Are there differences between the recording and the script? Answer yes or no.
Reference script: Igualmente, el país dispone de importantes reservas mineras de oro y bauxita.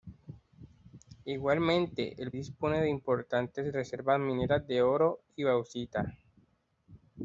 yes